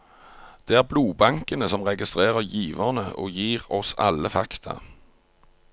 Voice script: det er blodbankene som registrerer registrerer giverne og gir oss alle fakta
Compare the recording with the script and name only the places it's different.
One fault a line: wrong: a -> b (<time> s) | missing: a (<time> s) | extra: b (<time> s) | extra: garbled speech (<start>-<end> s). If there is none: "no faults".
missing: registrerer (2.4 s)